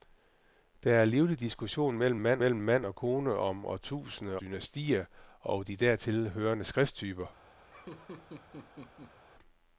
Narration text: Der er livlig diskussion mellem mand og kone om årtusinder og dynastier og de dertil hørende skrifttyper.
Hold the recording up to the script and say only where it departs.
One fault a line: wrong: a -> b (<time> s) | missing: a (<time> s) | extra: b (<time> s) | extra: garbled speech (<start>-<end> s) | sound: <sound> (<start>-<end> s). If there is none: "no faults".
extra: mellem mand (2.4 s)
missing: og (4.4 s)
sound: laugh (7.6-9.2 s)